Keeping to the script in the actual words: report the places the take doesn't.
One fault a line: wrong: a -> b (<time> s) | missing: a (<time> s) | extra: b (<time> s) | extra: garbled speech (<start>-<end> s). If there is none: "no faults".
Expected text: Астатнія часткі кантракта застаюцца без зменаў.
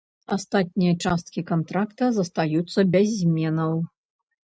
no faults